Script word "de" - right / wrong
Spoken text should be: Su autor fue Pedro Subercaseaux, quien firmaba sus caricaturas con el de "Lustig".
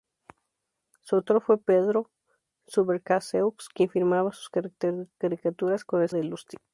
right